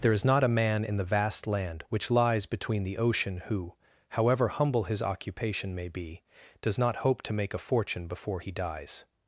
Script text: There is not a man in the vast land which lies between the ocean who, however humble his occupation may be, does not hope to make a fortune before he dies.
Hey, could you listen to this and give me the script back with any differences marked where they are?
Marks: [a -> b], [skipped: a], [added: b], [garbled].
There is not a man in the vast land which lies between the ocean who, however humble his occupation may be, does not hope to make a fortune before he dies.